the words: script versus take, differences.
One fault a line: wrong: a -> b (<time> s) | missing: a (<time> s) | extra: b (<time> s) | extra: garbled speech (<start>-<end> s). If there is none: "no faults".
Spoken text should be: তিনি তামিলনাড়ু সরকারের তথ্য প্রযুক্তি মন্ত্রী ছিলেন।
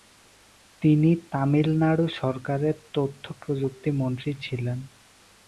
no faults